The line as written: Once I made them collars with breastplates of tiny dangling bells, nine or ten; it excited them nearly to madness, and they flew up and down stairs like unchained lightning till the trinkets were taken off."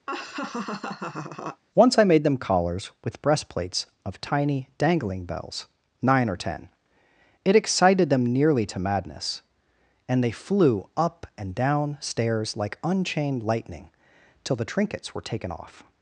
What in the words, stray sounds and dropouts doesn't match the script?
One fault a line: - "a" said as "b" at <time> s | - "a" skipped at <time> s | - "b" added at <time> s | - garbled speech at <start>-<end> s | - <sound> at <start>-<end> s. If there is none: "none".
- laugh at 0.1-1.6 s